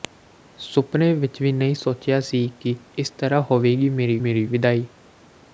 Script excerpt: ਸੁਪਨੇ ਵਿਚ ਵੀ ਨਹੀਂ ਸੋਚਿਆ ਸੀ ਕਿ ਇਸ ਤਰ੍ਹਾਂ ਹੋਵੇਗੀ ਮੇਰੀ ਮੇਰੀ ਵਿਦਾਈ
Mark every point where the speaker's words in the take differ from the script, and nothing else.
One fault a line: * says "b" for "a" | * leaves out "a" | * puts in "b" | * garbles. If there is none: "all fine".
all fine